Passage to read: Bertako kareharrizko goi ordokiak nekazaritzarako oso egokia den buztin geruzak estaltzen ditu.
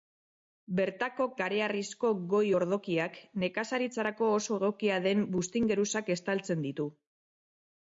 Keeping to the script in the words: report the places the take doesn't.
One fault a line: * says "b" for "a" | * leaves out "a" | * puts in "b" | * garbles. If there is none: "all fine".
all fine